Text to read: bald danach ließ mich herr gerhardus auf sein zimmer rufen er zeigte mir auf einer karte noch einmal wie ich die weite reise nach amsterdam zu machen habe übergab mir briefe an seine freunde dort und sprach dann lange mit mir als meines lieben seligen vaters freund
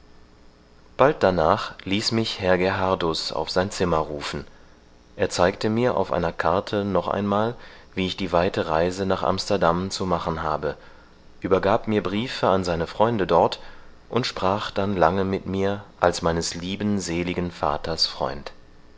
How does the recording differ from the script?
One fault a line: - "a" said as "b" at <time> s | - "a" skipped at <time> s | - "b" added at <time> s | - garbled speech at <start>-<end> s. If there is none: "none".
none